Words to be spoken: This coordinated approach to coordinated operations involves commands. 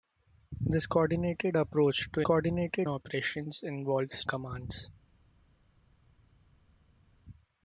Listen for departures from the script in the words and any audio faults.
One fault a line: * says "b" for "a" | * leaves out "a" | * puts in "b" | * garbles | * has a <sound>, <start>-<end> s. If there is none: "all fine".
all fine